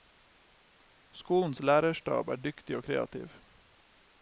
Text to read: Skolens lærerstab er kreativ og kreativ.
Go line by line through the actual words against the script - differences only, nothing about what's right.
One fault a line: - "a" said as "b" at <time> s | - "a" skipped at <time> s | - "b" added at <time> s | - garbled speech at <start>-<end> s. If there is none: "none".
- "kreativ" said as "dyktig" at 2.4 s